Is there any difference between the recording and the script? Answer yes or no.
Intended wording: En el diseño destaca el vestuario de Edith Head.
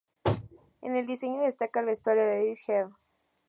no